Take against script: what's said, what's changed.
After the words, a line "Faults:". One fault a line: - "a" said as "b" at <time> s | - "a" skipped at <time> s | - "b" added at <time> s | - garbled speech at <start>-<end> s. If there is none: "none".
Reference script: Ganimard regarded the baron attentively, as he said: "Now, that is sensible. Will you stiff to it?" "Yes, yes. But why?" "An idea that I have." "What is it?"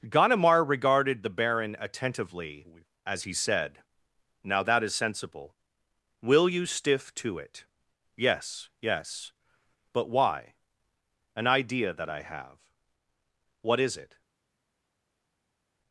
Ganimard regarded the baron attentively, as he said: "Now, that is sensible. Will you stiff to it?" "Yes, yes. But why?" "An idea that I have." "What is it?"
Faults:
none